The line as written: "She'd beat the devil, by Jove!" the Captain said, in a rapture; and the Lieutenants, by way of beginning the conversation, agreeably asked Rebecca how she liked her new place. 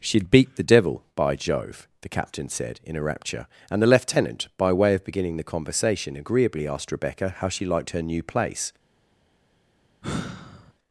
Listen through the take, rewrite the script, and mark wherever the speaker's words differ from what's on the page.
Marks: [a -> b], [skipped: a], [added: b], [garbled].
"She'd beat the devil, by Jove!" the Captain said, in a rapture; and the [Lieutenants, -> Lieutenant] by way of beginning the conversation, agreeably asked Rebecca how she liked her new place.